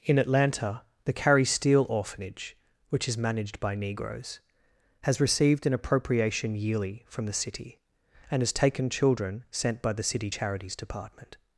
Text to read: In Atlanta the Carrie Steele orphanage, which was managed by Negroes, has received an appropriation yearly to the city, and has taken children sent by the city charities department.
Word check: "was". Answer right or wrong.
wrong